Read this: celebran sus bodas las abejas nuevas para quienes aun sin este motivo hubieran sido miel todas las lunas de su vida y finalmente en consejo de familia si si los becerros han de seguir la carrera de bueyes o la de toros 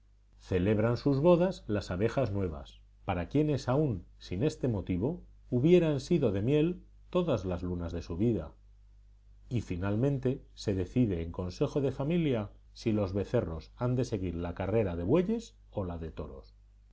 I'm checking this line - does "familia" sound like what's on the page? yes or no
yes